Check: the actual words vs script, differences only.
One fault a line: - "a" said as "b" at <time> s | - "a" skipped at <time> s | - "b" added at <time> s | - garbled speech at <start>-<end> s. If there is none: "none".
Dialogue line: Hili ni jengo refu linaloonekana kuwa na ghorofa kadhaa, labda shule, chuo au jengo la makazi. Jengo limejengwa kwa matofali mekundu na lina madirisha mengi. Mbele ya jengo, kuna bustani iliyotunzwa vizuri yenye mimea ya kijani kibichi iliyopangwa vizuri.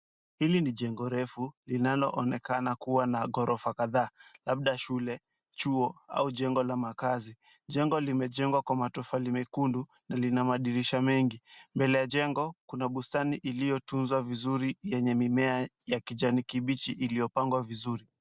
none